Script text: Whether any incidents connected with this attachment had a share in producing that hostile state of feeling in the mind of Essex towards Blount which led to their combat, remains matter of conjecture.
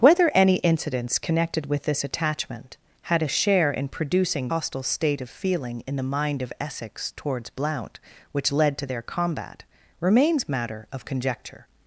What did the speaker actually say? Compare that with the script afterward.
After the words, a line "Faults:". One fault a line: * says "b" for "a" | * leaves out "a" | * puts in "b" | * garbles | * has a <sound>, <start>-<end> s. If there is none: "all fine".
Whether any incidents connected with this attachment had a share in producing hostile state of feeling in the mind of Essex towards Blount which led to their combat, remains matter of conjecture.
Faults:
* leaves out "that"